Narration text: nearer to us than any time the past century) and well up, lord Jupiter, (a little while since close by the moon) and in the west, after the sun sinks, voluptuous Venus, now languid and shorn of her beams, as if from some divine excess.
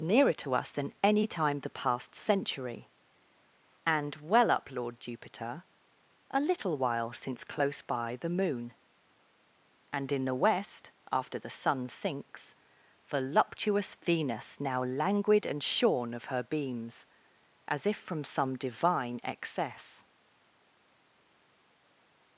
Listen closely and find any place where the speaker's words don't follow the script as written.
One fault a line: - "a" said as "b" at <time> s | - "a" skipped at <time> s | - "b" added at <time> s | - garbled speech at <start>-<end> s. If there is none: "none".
none